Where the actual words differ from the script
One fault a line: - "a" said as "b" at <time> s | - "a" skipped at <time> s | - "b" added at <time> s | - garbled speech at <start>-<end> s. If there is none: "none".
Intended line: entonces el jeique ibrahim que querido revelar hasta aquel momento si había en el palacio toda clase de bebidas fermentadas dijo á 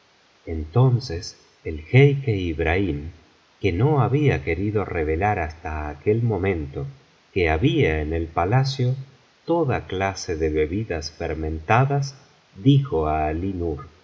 - "no había" added at 3.7 s
- "si" said as "que" at 7.3 s